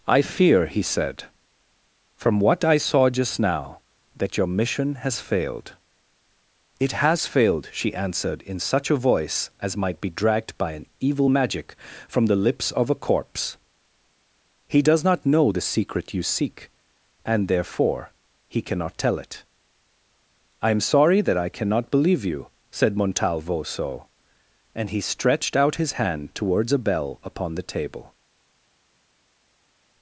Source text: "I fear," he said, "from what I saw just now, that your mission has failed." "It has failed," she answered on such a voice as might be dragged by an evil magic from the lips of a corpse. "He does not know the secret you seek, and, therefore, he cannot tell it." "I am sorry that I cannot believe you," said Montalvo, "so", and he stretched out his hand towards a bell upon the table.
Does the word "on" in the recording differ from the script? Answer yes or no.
yes